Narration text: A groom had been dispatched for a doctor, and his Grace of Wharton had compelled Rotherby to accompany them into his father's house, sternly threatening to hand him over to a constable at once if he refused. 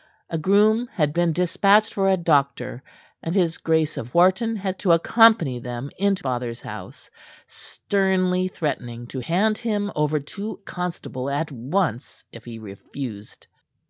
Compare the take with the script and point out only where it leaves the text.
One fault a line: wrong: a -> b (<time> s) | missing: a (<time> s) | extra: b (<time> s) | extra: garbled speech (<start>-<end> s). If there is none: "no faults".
missing: compelled Rotherby (4.8 s)
missing: his (6.2 s)
missing: a (10.6 s)